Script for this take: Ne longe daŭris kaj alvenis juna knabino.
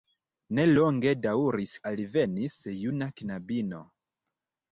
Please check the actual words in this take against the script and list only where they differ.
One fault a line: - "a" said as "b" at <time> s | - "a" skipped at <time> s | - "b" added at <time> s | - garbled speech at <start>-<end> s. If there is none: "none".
- "kaj" skipped at 1.7 s